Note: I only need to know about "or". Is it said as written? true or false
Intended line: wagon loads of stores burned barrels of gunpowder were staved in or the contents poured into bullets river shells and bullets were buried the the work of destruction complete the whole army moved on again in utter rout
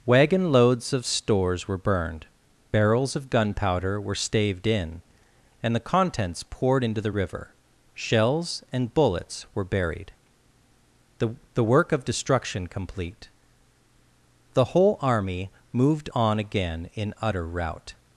false